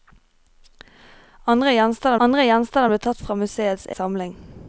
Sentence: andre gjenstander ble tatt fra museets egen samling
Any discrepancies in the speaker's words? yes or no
yes